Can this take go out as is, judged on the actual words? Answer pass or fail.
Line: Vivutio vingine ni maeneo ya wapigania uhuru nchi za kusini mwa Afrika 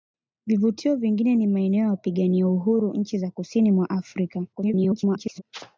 fail